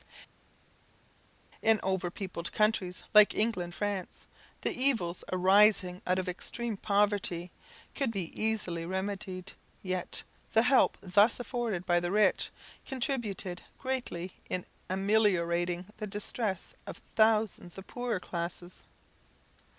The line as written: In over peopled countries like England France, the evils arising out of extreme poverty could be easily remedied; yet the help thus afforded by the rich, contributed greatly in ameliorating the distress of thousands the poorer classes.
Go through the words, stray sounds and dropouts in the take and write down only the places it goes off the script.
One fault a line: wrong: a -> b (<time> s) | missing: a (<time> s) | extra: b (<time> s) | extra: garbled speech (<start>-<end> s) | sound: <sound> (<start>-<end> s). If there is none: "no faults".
no faults